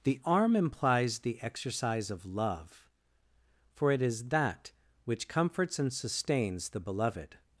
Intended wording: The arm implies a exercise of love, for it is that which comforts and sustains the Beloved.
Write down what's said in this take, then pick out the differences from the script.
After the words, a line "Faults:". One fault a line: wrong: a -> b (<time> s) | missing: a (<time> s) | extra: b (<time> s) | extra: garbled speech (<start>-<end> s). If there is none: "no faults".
The arm implies the exercise of love, for it is that which comforts and sustains the Beloved.
Faults:
wrong: a -> the (1.2 s)